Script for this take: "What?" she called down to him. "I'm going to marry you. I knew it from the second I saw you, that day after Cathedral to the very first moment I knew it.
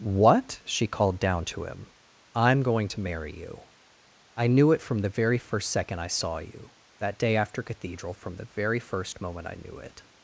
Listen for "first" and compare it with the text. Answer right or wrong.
right